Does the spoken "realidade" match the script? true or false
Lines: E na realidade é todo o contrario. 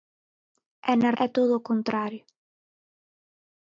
false